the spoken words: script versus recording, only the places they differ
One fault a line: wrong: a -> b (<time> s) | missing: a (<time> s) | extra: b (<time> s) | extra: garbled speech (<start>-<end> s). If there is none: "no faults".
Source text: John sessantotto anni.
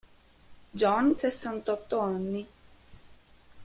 no faults